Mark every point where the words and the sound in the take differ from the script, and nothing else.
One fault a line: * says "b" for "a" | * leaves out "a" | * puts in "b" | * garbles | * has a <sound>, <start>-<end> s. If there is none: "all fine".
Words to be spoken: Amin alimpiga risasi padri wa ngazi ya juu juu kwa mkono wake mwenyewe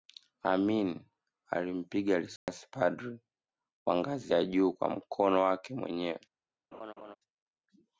* has a dropout, 2.4-2.5 s
* leaves out "juu"
* has a laugh, 6.7-7.2 s